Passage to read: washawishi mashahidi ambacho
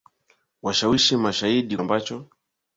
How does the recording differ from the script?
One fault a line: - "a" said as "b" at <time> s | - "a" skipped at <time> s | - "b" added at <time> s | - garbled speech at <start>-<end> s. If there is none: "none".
none